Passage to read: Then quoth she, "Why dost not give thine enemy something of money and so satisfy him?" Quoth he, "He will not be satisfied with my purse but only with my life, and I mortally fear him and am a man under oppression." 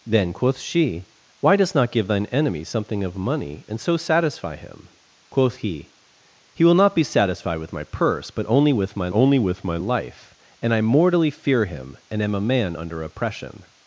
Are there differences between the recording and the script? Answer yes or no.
yes